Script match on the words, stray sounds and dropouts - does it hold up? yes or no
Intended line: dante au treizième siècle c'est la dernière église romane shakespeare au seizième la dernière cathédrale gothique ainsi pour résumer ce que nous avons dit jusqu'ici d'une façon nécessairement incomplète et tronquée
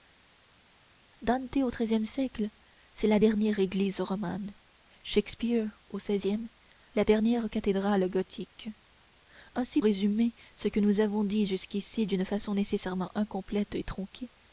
no